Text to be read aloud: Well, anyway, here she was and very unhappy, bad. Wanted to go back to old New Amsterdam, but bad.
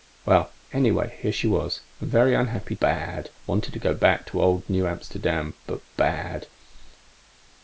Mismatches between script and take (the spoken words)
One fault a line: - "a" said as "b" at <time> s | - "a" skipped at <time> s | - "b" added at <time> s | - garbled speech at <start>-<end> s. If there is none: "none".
none